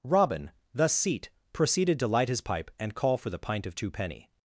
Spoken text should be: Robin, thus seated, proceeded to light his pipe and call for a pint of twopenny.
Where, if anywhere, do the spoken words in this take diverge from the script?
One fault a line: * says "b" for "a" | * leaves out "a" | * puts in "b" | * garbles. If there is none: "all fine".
* says "seat" for "seated"
* says "the" for "a"